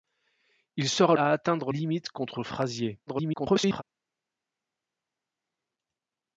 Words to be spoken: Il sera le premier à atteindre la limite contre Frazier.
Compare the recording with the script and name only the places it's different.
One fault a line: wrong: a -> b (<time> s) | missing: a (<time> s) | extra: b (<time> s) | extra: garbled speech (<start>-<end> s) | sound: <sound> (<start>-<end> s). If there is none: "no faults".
missing: le premier (1.1 s)
missing: la (1.7 s)
extra: garbled speech (3.1-3.8 s)